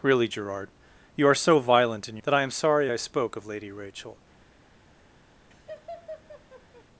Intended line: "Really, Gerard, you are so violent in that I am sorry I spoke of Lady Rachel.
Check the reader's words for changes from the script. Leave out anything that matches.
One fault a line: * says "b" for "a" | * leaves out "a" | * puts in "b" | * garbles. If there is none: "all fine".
all fine